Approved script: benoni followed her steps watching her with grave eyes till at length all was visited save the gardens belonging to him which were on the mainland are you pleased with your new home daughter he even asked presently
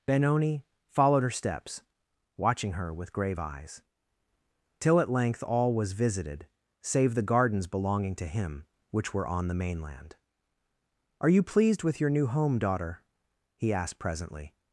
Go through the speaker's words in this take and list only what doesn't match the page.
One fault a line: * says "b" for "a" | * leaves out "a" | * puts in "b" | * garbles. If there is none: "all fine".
* leaves out "even"